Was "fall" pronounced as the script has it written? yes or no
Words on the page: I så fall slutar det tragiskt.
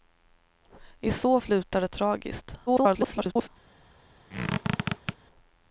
no